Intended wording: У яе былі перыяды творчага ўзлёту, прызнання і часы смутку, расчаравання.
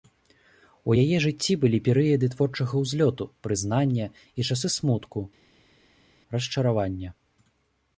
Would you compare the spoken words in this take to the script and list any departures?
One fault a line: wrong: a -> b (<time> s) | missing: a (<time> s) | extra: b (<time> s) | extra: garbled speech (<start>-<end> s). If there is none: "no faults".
extra: жыцці (1.2 s)